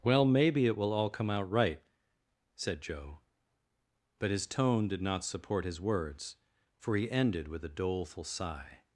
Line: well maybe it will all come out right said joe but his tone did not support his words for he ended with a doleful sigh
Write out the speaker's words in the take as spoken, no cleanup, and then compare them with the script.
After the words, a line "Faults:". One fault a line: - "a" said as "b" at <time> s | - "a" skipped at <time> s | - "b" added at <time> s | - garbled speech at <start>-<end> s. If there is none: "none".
well maybe it will all come out right said joe but his tone did not support his words for he ended with a doleful sigh
Faults:
none